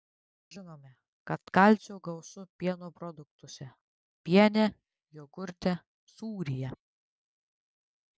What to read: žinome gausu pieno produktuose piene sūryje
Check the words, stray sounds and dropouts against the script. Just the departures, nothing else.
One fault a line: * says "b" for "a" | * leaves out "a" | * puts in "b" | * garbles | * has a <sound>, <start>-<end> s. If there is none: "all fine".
* puts in "kad kalcio"
* puts in "jogurte"